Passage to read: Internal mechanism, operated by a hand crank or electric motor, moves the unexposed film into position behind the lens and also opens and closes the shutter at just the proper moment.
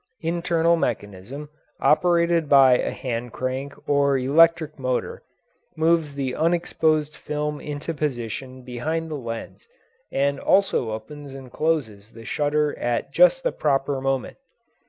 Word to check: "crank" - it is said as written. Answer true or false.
true